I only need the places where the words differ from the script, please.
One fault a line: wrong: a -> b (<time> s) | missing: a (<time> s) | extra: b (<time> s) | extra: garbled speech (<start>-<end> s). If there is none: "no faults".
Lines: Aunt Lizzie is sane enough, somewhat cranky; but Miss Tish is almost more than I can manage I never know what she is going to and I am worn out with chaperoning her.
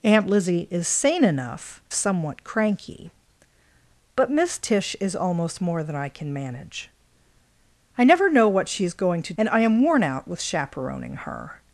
no faults